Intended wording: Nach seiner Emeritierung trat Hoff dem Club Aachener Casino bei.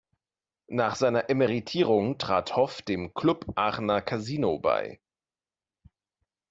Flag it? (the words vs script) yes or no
no